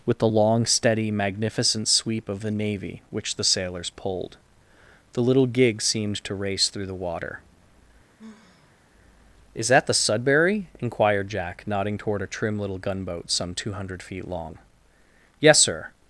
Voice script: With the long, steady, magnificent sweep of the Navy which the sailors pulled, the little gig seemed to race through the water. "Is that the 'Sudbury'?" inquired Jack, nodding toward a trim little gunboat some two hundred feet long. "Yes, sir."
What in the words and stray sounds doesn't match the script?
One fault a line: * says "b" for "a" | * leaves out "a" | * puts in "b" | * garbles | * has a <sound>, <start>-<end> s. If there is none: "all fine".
* has a sigh, 8.2-8.8 s